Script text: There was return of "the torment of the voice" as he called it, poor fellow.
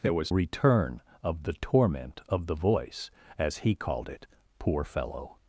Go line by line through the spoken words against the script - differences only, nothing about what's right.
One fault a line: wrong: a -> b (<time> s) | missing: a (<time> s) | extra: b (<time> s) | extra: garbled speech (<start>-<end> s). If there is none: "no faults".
no faults